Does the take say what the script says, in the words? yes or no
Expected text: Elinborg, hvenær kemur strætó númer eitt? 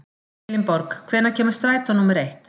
yes